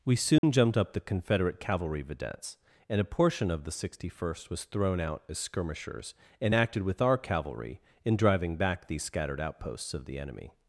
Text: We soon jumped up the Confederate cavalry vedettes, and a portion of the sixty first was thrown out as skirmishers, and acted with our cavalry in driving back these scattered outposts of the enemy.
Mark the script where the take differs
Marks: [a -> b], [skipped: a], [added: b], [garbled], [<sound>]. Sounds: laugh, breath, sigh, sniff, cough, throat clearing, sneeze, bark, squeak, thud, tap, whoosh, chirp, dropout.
We soon [dropout] jumped up the Confederate cavalry vedettes, and a portion of the sixty first was thrown out as skirmishers, and acted with our cavalry in driving back these scattered outposts of the enemy.